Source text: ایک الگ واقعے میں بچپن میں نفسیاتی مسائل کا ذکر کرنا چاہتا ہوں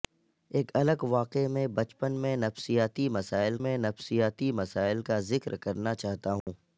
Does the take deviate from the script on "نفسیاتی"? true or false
false